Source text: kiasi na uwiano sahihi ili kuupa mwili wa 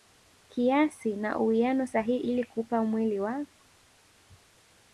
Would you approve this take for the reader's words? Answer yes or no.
yes